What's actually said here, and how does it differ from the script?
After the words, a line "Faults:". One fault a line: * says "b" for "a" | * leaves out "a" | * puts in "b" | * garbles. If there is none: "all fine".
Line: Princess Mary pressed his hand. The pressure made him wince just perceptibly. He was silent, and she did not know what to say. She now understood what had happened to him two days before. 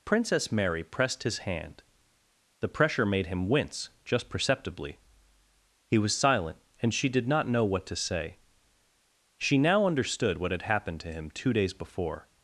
Princess Mary pressed his hand. The pressure made him wince just perceptibly. He was silent, and she did not know what to say. She now understood what had happened to him two days before.
Faults:
all fine